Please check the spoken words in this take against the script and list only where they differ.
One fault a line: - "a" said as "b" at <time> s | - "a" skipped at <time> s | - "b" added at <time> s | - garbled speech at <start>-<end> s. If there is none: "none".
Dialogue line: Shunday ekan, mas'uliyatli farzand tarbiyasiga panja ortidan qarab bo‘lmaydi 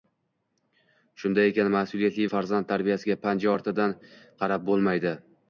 none